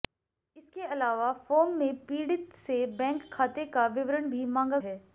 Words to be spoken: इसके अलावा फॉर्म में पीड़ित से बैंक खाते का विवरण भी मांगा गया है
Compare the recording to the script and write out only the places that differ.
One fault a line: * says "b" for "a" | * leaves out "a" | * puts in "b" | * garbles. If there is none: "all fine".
* leaves out "गया"